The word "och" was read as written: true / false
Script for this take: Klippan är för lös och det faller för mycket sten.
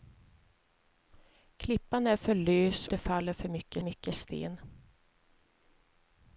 false